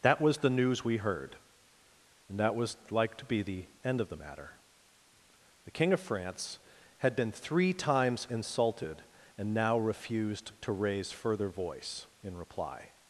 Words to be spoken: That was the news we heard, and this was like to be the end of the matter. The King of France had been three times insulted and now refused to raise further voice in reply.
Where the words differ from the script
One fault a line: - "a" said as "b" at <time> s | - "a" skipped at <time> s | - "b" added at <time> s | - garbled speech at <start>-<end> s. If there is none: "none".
- "this" said as "that" at 2.4 s